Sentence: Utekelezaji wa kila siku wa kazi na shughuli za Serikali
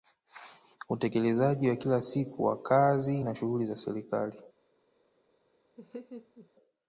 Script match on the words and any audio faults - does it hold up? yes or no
no